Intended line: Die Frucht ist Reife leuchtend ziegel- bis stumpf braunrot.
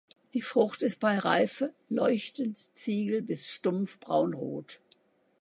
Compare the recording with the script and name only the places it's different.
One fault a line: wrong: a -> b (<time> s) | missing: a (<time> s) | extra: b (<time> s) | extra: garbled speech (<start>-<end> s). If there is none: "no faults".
extra: bei (1.0 s)